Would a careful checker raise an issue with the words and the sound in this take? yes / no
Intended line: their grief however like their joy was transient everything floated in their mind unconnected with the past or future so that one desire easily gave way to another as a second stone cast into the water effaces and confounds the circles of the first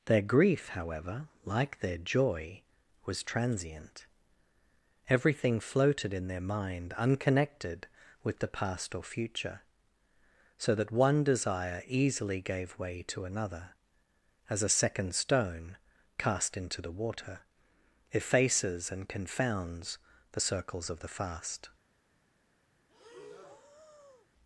yes